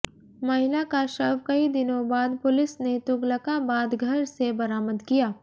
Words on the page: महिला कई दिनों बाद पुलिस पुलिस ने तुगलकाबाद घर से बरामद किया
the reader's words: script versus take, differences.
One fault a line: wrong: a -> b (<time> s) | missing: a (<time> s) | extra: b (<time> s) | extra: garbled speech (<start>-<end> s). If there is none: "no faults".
extra: का शव (0.9 s)
missing: पुलिस (2.8 s)